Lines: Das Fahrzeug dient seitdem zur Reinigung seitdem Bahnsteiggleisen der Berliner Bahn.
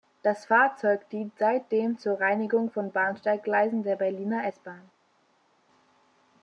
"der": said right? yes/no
yes